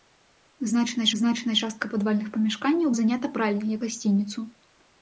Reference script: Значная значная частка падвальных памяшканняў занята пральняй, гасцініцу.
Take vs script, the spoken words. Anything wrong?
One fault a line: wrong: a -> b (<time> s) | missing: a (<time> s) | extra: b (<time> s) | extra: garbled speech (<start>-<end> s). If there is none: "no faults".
no faults